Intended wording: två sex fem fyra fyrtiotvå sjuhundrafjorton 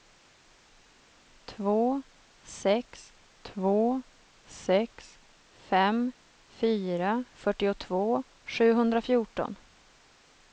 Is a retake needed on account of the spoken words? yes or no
yes